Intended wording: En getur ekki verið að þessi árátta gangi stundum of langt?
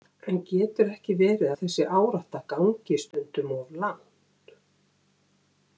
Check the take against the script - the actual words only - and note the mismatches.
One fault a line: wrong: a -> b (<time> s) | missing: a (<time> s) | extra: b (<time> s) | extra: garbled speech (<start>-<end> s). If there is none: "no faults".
no faults